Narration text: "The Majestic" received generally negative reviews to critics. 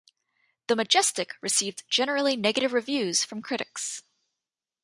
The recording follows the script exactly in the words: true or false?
false